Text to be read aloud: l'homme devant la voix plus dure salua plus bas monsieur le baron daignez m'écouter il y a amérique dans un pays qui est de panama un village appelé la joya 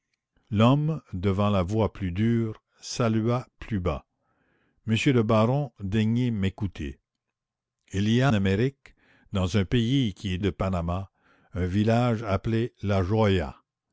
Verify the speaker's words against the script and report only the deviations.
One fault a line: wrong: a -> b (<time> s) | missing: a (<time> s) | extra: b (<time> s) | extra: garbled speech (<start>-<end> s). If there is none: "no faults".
no faults